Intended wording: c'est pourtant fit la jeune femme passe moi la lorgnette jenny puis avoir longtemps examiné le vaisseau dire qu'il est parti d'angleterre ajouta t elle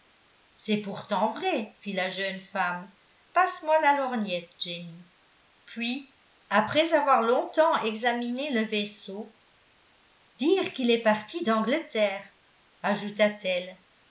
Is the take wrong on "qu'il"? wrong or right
right